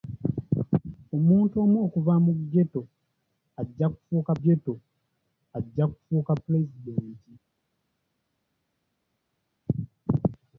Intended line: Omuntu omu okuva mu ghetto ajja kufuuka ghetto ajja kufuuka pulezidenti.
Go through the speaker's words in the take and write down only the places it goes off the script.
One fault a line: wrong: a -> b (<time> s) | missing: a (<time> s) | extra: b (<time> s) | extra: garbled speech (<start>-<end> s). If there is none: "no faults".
no faults